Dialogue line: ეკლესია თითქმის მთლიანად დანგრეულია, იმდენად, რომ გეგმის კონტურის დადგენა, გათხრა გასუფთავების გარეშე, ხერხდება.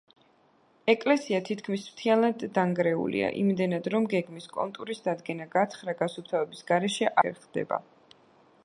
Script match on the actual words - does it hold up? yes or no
yes